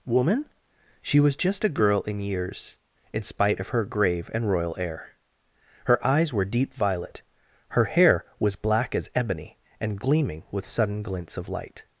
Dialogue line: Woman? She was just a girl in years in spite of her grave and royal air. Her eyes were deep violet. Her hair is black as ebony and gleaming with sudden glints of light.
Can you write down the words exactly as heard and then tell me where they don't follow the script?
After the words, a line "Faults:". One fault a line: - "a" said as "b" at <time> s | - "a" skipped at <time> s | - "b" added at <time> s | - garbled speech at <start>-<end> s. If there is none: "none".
Woman? She was just a girl in years in spite of her grave and royal air. Her eyes were deep violet. Her hair was black as ebony and gleaming with sudden glints of light.
Faults:
- "is" said as "was" at 8.4 s